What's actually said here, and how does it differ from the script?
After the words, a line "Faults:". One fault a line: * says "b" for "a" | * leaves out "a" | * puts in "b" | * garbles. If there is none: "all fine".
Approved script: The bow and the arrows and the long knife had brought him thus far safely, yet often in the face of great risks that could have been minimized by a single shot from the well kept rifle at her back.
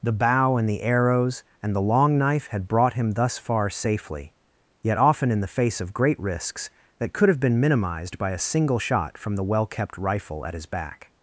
The bow and the arrows and the long knife had brought him thus far safely, yet often in the face of great risks that could have been minimized by a single shot from the well kept rifle at his back.
Faults:
* says "his" for "her"